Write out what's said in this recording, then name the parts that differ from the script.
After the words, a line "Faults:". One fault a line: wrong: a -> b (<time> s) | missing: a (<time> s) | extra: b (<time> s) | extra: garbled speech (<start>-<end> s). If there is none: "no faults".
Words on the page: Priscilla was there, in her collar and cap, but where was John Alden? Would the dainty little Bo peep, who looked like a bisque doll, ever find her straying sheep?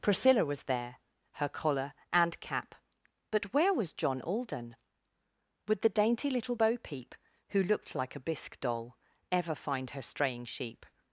Priscilla was there, her collar and cap, but where was John Alden? Would the dainty little Bo peep, who looked like a bisque doll, ever find her straying sheep?
Faults:
missing: in (0.9 s)